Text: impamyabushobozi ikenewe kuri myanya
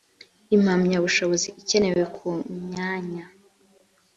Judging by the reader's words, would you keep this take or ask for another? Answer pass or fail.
fail